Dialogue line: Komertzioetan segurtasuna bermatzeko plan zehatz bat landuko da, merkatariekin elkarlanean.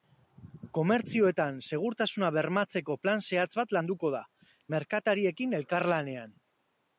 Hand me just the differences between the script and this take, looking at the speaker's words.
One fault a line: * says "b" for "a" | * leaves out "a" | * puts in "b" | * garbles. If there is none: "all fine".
all fine